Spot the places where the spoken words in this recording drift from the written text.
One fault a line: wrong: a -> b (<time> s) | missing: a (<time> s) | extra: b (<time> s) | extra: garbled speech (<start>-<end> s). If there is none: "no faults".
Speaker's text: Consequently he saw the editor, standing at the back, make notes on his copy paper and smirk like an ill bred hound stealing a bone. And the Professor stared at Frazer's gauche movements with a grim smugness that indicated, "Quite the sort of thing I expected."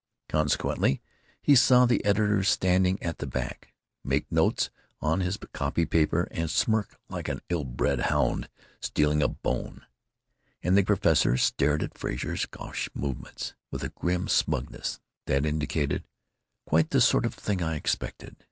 no faults